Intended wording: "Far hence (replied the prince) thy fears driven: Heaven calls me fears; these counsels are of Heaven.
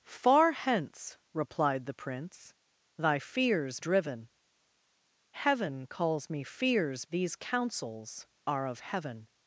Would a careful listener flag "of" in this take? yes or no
no